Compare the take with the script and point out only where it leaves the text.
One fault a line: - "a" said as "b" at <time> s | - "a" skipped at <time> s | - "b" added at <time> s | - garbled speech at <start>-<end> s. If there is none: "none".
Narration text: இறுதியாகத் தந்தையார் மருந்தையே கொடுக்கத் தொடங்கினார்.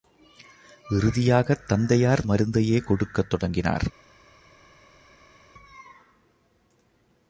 none